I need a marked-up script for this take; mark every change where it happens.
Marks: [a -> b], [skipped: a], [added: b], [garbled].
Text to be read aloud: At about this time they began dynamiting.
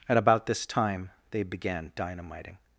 At about this time they began dynamiting.